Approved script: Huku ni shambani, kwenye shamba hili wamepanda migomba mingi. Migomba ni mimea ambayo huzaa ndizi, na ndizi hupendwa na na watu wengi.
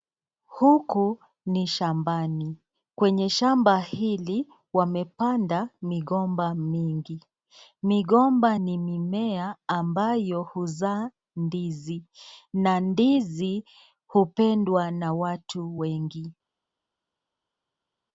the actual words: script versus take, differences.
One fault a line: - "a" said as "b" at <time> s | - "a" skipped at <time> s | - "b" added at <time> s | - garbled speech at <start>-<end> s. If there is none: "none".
- "na" skipped at 15.1 s